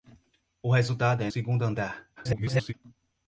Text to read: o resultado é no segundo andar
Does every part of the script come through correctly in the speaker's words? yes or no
no